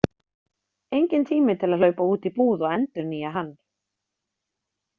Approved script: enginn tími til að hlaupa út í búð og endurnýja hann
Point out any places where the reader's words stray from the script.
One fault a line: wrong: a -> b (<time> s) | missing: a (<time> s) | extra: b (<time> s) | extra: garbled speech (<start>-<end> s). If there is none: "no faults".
no faults